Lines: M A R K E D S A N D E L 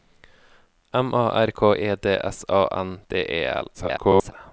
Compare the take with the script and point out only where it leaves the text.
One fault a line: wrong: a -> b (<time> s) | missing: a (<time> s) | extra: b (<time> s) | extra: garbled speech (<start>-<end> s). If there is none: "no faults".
extra: garbled speech (3.7-4.3 s)